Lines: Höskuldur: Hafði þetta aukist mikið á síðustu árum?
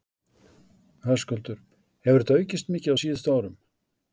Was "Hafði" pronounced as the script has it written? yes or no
no